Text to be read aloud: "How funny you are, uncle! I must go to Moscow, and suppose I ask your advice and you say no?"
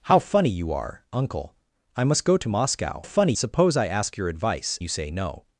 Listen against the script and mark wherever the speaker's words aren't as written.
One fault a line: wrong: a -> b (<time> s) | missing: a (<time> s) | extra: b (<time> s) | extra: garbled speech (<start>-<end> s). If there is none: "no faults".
wrong: and -> funny (3.0 s)
missing: and (4.8 s)